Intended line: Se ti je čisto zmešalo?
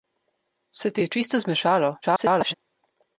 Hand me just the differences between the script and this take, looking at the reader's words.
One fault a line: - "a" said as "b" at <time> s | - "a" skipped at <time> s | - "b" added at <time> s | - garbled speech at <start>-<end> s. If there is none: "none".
- garbled speech at 2.0-2.5 s